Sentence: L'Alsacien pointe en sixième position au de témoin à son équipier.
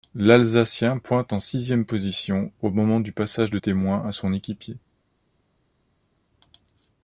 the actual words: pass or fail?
fail